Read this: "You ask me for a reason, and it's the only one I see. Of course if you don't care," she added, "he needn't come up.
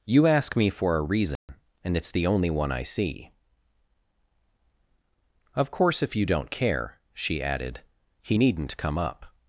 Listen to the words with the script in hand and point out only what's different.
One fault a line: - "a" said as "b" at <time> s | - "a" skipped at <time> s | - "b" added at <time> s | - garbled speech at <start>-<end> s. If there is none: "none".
none